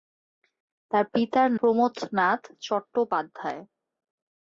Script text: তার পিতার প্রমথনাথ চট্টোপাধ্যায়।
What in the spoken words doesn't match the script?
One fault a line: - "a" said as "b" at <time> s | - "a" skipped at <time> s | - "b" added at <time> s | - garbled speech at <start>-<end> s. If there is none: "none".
none